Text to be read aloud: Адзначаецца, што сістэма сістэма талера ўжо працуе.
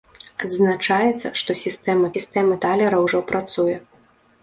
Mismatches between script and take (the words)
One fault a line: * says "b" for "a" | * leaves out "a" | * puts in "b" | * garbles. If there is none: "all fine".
all fine